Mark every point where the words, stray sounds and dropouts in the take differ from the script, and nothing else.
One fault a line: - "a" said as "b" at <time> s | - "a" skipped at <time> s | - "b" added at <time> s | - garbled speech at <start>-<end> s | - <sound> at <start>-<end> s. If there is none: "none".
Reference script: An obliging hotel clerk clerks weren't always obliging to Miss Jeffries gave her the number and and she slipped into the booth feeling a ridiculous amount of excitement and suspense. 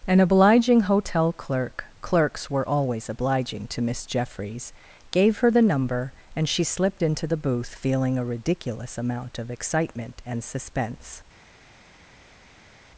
- "weren't" said as "were" at 2.5 s
- "and" skipped at 6.5 s